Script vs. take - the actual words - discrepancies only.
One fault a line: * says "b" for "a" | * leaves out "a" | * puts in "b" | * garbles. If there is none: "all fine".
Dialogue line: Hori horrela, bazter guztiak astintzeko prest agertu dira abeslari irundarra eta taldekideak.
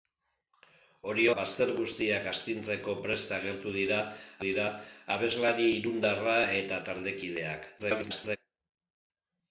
* leaves out "horrela"
* puts in "dira"
* garbles